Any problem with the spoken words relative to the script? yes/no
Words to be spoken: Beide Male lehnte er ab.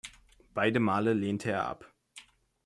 no